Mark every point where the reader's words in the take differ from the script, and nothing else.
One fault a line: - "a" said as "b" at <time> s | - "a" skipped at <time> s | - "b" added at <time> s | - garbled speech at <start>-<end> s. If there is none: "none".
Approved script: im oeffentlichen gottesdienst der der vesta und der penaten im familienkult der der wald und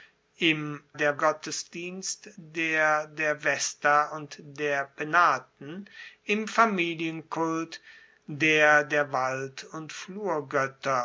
- "oeffentlichen" said as "der" at 0.9 s